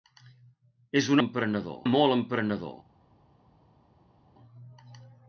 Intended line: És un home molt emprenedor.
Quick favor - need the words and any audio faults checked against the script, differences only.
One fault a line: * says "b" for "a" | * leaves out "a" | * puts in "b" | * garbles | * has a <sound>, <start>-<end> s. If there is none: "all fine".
* says "emprenedor" for "home"